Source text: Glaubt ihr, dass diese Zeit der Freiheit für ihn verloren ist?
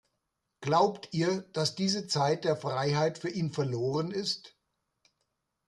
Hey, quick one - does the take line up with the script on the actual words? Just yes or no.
yes